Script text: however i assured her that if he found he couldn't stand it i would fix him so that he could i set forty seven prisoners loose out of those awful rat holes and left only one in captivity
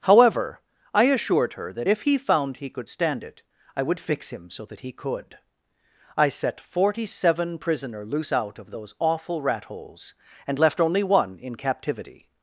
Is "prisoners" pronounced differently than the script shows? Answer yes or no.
yes